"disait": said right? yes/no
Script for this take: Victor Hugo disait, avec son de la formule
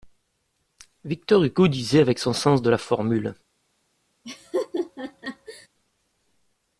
yes